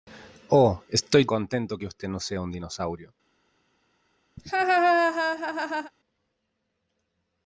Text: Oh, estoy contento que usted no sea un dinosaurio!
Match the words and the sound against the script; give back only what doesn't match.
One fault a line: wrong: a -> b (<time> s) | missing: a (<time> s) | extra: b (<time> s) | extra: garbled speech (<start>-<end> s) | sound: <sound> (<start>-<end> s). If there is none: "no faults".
sound: laugh (4.4-5.9 s)